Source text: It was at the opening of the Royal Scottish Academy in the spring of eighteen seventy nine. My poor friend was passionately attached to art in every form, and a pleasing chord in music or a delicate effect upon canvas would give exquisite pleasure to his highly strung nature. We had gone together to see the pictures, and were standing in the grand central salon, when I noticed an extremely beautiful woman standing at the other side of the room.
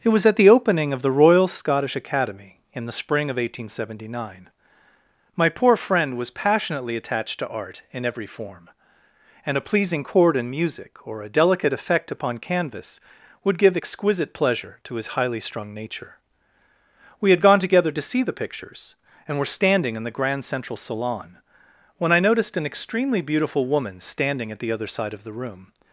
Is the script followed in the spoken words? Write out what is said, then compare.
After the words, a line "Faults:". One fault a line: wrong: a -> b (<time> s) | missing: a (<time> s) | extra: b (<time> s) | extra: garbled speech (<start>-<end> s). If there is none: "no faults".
It was at the opening of the Royal Scottish Academy in the spring of eighteen seventy nine. My poor friend was passionately attached to art in every form, and a pleasing chord in music or a delicate effect upon canvas would give exquisite pleasure to his highly strung nature. We had gone together to see the pictures, and were standing in the grand central salon, when I noticed an extremely beautiful woman standing at the other side of the room.
Faults:
no faults